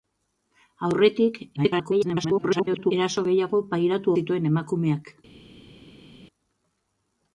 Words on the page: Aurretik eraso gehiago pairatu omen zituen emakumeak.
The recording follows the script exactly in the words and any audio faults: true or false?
false